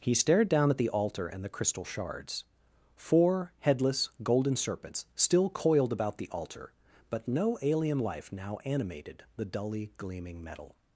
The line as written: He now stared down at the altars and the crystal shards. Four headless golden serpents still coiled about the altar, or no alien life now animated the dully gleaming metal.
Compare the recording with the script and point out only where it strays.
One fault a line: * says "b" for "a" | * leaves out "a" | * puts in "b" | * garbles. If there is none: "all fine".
* leaves out "now"
* says "altar" for "altars"
* says "but" for "or"